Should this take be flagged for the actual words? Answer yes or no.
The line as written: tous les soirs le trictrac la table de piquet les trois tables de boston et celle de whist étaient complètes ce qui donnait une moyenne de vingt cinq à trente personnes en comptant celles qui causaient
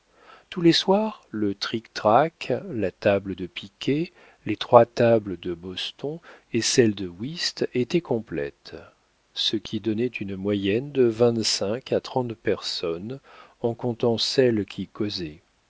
no